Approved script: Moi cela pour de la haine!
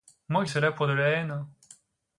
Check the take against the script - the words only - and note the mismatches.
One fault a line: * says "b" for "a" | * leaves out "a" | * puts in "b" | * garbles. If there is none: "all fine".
all fine